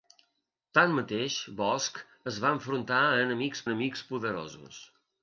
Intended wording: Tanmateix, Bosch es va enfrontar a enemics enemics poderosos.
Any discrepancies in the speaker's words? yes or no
no